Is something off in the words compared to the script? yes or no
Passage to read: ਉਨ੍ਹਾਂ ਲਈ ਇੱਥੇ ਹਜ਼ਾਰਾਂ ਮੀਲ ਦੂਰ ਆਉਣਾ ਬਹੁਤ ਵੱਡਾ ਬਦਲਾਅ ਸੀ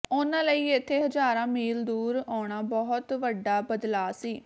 no